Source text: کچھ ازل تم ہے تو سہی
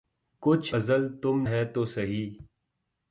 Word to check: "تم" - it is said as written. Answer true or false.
true